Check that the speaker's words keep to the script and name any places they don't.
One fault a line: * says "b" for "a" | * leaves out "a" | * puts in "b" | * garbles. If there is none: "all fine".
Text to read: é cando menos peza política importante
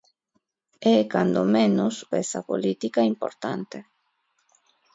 all fine